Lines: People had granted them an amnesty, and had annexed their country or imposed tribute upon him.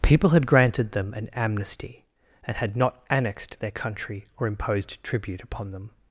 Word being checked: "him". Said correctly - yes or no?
no